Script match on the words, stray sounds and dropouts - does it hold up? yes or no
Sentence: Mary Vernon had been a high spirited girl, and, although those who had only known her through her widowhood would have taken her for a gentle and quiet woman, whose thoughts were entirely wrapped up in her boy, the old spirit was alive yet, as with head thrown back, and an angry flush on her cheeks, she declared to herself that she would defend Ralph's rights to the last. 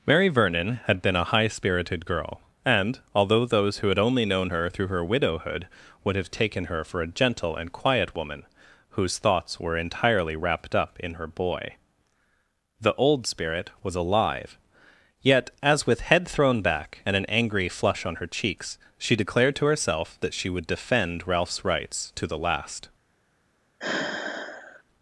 no